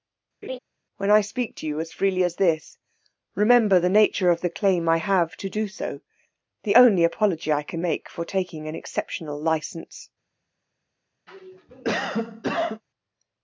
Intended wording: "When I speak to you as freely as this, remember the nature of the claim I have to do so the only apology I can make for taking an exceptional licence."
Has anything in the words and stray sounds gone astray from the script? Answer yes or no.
yes